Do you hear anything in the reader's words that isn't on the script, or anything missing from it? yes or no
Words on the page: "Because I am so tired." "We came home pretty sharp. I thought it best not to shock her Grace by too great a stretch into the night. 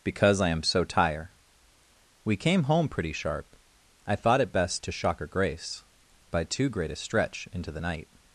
yes